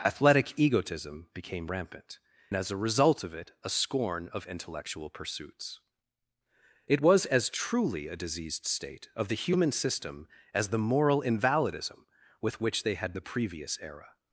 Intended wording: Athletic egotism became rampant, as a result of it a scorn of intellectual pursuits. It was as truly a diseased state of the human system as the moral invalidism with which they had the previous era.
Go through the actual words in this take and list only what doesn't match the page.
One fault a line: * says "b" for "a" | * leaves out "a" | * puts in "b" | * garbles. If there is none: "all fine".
all fine